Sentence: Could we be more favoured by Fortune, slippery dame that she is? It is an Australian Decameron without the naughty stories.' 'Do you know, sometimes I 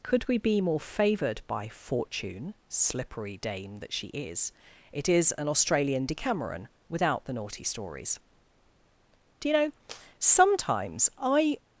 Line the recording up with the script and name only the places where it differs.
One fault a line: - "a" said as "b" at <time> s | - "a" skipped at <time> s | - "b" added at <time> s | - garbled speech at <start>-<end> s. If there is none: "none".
none